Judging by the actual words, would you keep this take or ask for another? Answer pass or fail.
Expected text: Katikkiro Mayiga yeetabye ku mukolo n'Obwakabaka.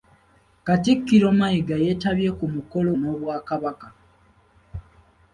pass